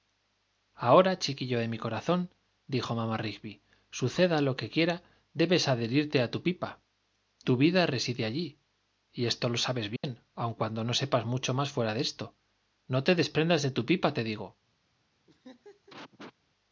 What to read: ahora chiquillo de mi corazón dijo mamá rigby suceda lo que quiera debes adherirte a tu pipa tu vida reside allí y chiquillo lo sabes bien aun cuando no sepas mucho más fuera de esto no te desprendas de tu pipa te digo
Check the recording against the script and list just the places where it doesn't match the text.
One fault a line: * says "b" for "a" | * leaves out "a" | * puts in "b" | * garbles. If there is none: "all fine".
* says "esto" for "chiquillo"